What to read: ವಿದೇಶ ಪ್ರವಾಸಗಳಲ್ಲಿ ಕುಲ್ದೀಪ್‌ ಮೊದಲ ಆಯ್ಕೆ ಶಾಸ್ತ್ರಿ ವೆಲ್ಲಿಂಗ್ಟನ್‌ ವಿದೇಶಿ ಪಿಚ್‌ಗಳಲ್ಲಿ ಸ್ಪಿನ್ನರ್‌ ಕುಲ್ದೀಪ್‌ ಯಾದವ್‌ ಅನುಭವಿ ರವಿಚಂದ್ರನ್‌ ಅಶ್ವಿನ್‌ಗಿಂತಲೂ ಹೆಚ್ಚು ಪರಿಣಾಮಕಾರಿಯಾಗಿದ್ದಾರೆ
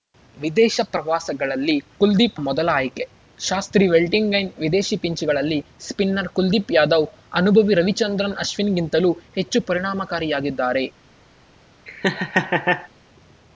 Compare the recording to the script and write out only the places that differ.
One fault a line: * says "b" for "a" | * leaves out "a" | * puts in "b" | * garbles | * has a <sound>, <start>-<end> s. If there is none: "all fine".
* has a laugh, 11.9-12.9 s